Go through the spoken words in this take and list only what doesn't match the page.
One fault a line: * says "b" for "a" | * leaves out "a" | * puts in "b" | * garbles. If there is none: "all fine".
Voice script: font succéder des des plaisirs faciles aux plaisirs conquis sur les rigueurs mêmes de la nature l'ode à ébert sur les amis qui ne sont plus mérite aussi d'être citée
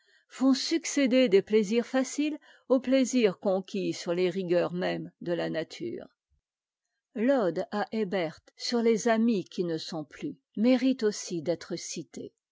* leaves out "des"